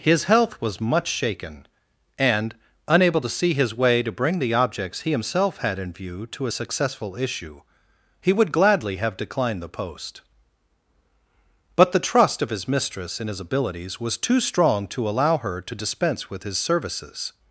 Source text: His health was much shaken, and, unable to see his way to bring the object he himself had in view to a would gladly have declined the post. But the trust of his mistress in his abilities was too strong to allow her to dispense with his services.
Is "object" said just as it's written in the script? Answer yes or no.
no